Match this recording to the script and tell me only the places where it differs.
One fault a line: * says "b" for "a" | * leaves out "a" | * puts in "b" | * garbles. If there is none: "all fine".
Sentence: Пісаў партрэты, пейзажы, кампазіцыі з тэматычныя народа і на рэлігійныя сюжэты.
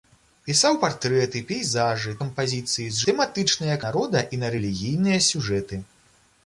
all fine